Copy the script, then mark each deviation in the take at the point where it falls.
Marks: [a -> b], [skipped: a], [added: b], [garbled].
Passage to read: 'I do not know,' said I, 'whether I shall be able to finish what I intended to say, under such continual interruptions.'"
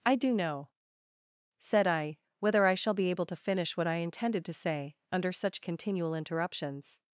'I do [skipped: not] know,' said I, 'whether I shall be able to finish what I intended to say, under such continual interruptions.'"